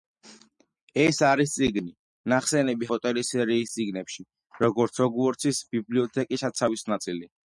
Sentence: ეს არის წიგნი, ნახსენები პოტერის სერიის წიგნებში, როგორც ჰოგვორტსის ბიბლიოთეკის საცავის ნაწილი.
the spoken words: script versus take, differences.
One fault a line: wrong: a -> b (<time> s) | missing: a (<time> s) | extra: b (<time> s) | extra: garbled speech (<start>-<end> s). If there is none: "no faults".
no faults